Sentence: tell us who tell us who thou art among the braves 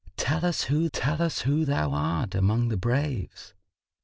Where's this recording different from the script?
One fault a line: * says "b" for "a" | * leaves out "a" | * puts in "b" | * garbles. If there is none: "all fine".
all fine